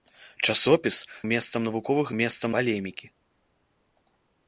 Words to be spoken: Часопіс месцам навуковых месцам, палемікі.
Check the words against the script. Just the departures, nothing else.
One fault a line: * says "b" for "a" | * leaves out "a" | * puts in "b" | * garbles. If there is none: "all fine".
all fine